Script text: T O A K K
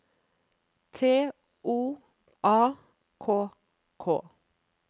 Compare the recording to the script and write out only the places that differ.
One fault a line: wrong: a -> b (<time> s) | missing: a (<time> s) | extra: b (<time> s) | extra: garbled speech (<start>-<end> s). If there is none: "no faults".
no faults